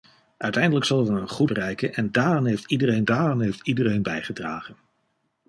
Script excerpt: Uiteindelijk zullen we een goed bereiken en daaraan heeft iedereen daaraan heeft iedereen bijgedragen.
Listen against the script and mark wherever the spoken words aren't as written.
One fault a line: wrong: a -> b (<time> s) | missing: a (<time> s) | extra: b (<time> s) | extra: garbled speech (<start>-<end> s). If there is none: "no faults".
no faults